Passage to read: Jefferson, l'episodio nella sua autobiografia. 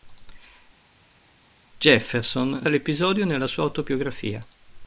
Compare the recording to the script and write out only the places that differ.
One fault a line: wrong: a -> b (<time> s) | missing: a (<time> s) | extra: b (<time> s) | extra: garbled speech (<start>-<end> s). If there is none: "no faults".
no faults